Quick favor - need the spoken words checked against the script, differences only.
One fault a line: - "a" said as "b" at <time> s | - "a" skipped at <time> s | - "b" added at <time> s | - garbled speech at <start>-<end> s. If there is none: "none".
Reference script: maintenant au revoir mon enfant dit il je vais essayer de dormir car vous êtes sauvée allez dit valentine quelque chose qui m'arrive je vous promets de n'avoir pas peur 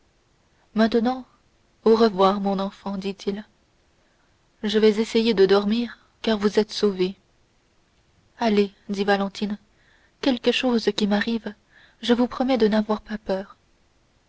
none